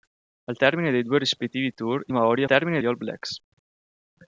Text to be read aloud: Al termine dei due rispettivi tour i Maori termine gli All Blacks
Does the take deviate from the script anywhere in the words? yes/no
no